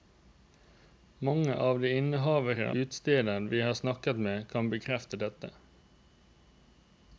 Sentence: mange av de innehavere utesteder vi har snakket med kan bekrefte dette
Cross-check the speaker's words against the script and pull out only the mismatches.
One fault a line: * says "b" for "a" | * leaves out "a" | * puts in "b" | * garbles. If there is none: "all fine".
all fine